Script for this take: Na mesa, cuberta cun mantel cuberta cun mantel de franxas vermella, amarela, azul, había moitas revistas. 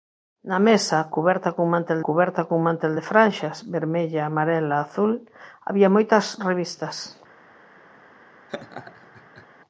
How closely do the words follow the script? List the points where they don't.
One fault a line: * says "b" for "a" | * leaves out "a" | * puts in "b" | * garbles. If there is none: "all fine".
all fine